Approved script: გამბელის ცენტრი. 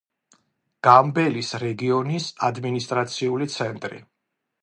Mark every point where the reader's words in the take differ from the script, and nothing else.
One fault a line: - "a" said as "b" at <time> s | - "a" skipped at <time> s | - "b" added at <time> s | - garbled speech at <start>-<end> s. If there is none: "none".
- "რეგიონის ადმინისტრაციული" added at 1.6 s